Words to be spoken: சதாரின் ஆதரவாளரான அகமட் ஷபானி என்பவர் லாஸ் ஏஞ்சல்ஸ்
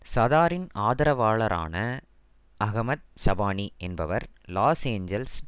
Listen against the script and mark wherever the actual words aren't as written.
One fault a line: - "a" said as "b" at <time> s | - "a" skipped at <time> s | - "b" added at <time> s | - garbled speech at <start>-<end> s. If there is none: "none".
none